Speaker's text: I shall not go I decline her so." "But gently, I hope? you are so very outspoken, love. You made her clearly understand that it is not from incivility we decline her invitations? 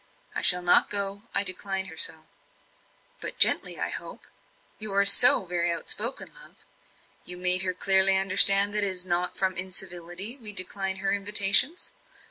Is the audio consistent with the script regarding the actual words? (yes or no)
yes